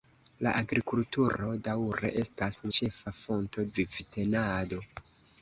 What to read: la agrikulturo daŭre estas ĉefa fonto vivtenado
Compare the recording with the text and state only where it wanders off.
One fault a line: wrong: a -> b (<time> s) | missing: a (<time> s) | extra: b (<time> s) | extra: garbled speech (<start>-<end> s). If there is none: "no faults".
no faults